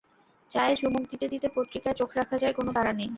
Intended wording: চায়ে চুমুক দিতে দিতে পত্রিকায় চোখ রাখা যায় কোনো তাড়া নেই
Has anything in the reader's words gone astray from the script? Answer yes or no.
no